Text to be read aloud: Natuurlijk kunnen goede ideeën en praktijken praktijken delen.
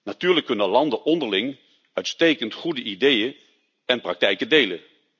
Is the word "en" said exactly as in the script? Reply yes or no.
yes